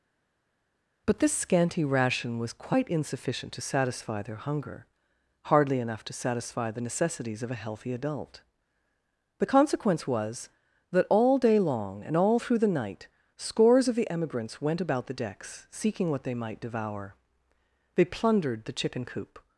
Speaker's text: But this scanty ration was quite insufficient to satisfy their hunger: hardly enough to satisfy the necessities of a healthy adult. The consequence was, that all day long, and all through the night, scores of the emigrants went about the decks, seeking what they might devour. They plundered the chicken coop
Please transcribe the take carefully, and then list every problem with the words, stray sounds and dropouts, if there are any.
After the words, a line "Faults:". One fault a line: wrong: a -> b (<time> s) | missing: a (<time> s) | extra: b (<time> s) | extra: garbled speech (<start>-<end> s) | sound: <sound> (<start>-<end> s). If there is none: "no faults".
But this scanty ration was quite insufficient to satisfy their hunger: hardly enough to satisfy the necessities of a healthy adult. The consequence was, that all day long, and all through the night, scores of the emigrants went about the decks, seeking what they might devour. They plundered the chicken coop
Faults:
no faults